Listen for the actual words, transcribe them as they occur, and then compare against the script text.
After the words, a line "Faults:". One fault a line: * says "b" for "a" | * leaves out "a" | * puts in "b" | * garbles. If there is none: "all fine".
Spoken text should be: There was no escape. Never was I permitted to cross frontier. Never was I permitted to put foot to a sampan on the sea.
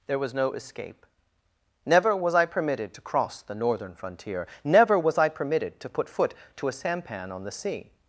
There was no escape. Never was I permitted to cross the northern frontier. Never was I permitted to put foot to a sampan on the sea.
Faults:
* puts in "the northern"